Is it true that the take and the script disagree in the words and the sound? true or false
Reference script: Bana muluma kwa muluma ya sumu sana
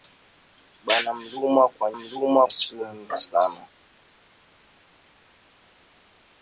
false